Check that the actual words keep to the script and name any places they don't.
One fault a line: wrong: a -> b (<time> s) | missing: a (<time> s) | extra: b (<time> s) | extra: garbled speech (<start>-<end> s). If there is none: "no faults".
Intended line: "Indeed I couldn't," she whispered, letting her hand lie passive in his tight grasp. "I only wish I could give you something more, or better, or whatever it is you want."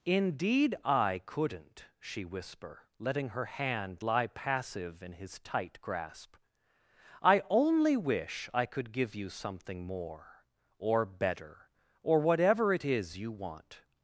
wrong: whispered -> whisper (2.2 s)